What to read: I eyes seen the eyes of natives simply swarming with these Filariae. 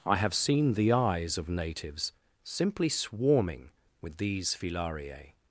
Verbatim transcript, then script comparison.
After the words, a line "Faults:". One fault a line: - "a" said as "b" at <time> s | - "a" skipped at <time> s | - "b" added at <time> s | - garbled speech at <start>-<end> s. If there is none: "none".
I have seen the eyes of natives simply swarming with these Filariae.
Faults:
- "eyes" said as "have" at 0.1 s